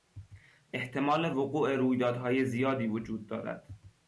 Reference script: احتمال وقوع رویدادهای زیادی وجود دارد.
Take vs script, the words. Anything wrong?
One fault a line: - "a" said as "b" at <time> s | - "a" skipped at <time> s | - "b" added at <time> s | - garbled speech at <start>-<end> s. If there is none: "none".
none